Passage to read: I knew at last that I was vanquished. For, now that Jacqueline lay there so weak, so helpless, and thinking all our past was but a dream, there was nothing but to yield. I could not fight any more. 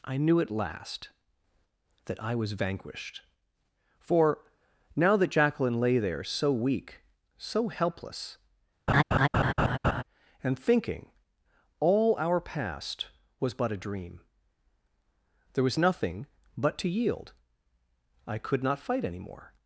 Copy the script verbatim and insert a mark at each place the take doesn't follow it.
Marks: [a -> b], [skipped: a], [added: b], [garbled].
I knew at last that I was vanquished. For, now that Jacqueline lay there so weak, so helpless, and thinking all our past was but a dream, there was nothing but to yield. I could not fight any more.